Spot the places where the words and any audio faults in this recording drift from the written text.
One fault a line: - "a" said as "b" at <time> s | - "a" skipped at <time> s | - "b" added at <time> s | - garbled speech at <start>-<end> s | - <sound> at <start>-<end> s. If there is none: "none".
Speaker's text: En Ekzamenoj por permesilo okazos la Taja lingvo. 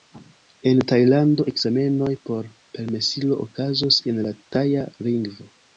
- "Tajlando" added at 0.9 s
- "en" added at 4.1 s